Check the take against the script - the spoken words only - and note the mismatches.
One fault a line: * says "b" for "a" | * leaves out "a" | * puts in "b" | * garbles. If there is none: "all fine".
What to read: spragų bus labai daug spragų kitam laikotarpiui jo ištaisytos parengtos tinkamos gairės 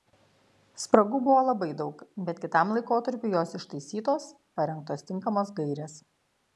* says "buvo" for "bus"
* says "bet" for "spragų"
* says "jos" for "jo"